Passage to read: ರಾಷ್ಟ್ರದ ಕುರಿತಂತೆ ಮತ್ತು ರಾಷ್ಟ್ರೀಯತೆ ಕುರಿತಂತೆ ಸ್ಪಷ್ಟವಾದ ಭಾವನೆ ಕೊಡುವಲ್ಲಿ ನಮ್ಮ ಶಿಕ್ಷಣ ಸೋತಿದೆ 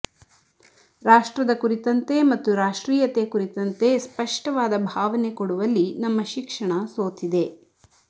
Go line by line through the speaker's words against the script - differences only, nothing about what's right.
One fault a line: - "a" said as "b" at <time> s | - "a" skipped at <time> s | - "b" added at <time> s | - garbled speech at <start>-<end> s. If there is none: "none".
none